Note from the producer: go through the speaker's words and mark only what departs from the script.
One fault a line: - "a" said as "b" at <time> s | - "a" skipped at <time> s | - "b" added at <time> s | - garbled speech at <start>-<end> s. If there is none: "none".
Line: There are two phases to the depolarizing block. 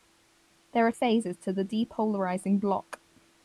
- "two" skipped at 0.9 s